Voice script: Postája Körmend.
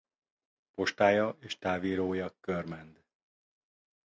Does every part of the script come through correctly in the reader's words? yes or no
no